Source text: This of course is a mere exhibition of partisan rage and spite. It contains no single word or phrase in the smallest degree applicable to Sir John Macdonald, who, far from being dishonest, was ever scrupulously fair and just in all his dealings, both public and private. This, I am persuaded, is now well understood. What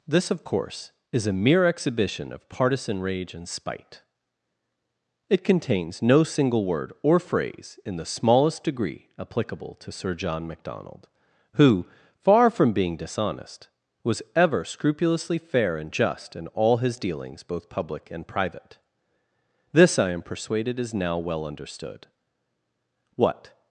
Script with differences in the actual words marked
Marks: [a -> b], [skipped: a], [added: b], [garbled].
This of course is a mere exhibition of partisan rage and spite. It contains no single word or phrase in the smallest degree applicable to Sir John Macdonald, who, far from being dishonest, was ever scrupulously fair and just in all his dealings, both public and private. This, I am persuaded, is now well understood. What